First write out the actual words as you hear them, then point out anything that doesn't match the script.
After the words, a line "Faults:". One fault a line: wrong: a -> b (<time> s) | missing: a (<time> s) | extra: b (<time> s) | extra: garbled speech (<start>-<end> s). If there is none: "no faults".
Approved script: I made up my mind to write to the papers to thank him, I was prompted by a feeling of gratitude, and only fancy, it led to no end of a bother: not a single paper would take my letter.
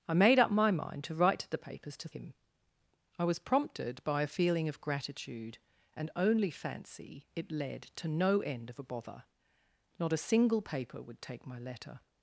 I made up my mind to write to the papers to him, I was prompted by a feeling of gratitude, and only fancy, it led to no end of a bother: not a single paper would take my letter.
Faults:
missing: thank (2.1 s)